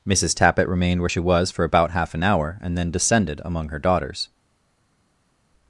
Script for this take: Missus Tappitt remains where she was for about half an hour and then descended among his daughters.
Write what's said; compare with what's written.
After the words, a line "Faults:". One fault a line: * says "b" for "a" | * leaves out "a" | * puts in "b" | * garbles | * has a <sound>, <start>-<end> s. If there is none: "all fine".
Missus Tappitt remained where she was for about half an hour and then descended among her daughters.
Faults:
* says "remained" for "remains"
* says "her" for "his"